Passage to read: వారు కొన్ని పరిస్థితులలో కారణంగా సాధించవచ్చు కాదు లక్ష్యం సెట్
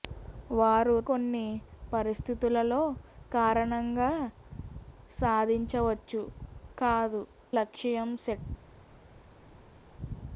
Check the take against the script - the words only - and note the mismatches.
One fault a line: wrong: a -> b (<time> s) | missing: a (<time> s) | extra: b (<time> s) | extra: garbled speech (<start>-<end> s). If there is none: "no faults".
no faults